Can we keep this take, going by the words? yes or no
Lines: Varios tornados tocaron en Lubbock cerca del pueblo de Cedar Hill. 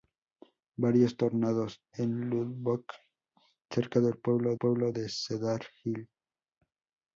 no